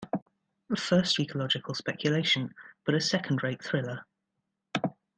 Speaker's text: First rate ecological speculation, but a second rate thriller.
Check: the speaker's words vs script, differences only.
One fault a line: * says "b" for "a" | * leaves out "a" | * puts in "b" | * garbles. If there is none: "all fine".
* leaves out "rate"